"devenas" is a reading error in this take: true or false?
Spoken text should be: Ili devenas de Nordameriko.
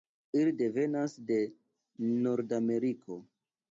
false